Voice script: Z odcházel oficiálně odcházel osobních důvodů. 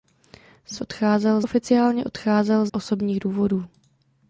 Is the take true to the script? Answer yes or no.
yes